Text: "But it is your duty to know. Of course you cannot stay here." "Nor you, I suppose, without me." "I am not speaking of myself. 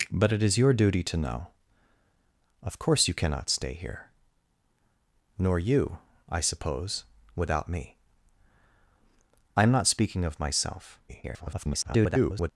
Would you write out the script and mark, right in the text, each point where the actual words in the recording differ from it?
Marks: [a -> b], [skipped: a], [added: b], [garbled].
"But it is your duty to know. Of course you cannot stay here." "Nor you, I suppose, without me." "I am not speaking of myself. [garbled]